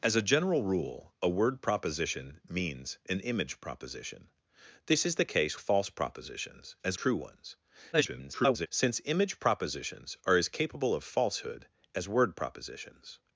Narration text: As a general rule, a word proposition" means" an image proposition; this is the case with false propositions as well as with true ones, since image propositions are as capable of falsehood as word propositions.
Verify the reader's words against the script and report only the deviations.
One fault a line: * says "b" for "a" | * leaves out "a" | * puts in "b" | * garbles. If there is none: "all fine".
* leaves out "with"
* leaves out "well as with"
* garbles